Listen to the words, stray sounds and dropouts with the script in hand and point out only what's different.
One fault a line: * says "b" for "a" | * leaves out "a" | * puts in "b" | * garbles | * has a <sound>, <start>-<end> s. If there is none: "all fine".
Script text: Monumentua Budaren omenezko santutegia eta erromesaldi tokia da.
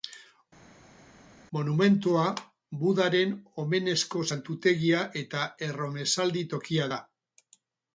all fine